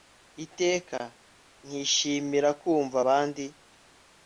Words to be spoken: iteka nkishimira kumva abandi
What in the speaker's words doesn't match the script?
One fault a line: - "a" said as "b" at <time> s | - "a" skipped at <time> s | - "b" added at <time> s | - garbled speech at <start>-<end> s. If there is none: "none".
none